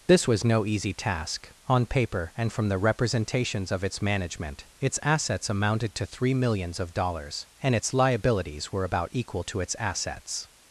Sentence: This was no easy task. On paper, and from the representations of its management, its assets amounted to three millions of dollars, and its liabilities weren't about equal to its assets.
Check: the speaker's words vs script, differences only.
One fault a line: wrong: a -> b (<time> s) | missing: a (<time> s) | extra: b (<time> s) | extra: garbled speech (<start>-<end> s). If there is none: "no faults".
wrong: weren't -> were (8.7 s)